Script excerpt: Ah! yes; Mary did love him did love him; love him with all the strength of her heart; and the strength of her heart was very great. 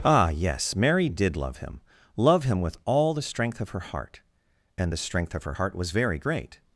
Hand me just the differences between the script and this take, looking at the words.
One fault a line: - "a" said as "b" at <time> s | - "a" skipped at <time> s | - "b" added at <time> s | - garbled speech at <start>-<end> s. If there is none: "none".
- "did love him" skipped at 1.8 s